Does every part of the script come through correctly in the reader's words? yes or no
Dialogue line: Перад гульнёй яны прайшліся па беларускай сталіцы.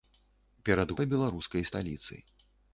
no